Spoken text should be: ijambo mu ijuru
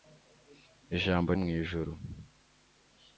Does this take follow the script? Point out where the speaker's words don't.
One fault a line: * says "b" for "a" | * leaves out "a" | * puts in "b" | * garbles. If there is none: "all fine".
all fine